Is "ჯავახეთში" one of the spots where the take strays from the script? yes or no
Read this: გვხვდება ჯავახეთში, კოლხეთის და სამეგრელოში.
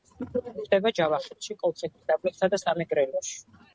no